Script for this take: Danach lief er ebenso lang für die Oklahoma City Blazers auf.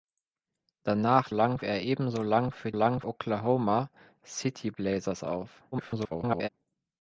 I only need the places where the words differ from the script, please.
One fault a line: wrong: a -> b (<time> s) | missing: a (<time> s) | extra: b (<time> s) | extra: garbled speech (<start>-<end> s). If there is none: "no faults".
wrong: lief -> lang (1.3 s)
wrong: die -> lang (2.7 s)
extra: garbled speech (5.7-6.5 s)